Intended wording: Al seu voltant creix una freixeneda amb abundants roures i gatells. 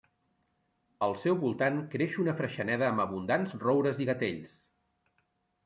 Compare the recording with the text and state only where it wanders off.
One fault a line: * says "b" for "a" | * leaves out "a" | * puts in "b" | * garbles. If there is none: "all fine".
all fine